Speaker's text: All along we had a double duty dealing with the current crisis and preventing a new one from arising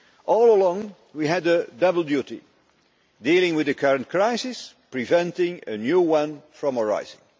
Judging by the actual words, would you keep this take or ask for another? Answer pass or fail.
fail